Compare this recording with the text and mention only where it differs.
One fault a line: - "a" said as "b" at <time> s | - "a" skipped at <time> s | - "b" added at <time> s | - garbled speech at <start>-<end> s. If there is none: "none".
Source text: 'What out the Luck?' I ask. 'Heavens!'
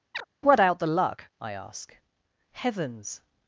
none